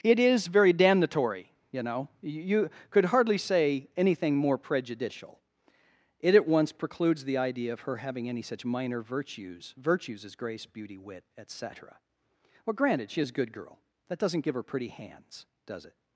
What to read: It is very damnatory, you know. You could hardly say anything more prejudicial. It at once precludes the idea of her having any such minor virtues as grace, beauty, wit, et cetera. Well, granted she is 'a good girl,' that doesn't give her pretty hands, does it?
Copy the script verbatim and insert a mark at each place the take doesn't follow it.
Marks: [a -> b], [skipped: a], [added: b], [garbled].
It is very damnatory, you know. You could hardly say anything more prejudicial. It at once precludes the idea of her having any such minor virtues [added: virtues] as grace, beauty, wit, et cetera. Well, granted she is 'a good girl,' that doesn't give her pretty hands, does it?